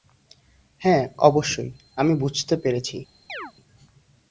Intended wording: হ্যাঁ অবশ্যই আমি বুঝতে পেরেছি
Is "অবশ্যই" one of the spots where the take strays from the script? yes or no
no